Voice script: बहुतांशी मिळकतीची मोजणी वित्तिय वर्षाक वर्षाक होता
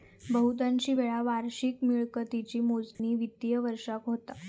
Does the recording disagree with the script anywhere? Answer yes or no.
yes